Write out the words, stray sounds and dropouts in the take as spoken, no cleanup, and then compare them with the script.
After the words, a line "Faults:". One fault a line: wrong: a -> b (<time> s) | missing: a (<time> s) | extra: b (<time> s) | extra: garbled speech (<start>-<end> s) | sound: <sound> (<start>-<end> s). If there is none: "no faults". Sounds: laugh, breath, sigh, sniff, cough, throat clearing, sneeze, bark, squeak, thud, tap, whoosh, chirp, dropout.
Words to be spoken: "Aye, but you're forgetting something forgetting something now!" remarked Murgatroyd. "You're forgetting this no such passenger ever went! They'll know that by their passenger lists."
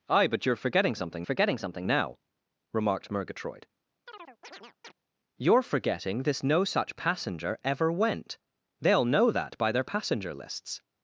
"Aye, but you're forgetting something forgetting something now!" remarked Murgatroyd. "You're forgetting this no such passenger ever went! They'll know that by their passenger lists."
Faults:
sound: chirp (4.1-4.9 s)